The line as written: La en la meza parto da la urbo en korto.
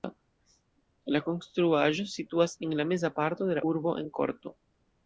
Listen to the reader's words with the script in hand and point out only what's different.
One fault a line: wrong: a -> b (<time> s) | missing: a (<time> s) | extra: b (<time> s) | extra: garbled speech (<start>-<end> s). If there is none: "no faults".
extra: konstruaĵo situas (1.2 s)
wrong: da -> de (3.5 s)